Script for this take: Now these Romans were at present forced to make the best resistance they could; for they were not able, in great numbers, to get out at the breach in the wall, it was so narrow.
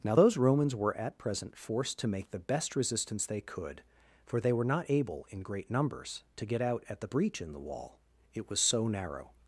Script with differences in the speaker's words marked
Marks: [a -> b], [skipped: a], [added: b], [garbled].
Now [these -> those] Romans were at present forced to make the best resistance they could; for they were not able, in great numbers, to get out at the breach in the wall, it was so narrow.